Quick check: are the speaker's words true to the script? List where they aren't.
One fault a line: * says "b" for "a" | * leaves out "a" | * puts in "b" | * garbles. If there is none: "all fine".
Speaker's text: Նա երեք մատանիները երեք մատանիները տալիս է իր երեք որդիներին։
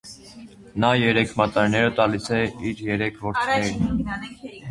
* leaves out "երեք մատանիները"